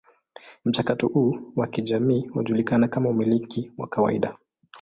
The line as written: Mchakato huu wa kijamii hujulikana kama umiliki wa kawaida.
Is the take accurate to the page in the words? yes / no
yes